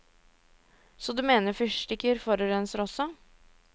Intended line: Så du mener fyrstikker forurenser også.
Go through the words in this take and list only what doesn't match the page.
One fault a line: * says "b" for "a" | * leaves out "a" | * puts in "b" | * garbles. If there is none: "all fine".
all fine